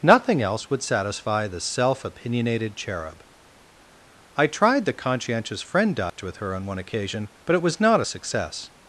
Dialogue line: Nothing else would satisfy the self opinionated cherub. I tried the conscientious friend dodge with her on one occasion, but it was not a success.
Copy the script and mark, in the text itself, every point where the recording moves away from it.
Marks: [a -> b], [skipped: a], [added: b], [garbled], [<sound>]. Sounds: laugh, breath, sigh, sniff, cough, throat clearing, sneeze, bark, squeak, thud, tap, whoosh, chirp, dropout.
Nothing else would satisfy the self opinionated cherub. I tried the conscientious friend dodge [dropout] with her on one occasion, but it was not a success.